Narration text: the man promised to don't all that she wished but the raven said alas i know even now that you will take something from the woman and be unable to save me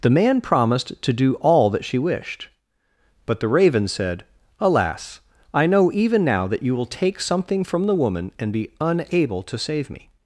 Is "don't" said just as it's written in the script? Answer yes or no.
no